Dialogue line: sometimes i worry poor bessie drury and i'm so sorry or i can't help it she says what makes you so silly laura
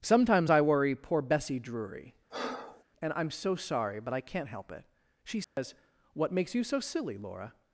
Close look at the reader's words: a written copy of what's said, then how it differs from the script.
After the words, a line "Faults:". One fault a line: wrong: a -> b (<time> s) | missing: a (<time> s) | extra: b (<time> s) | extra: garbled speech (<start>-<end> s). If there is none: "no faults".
sometimes i worry poor bessie drury and i'm so sorry but i can't help it she says what makes you so silly laura
Faults:
wrong: or -> but (4.0 s)